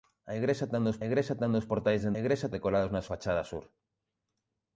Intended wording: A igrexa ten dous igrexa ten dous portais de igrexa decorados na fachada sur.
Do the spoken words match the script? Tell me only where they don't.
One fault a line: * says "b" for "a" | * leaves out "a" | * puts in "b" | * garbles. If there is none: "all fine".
all fine